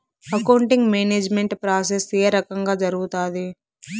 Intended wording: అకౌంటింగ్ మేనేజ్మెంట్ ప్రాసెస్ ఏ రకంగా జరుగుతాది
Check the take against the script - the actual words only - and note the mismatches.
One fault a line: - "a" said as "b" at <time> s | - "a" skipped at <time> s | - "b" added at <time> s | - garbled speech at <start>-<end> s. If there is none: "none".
none